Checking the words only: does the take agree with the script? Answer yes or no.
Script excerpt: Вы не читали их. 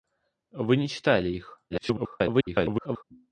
no